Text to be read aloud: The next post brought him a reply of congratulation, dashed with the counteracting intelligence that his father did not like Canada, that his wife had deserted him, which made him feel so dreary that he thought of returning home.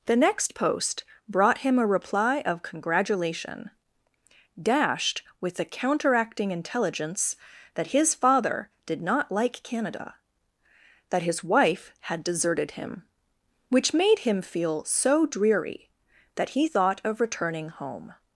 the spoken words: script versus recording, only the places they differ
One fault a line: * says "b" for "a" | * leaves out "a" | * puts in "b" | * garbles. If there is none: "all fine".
all fine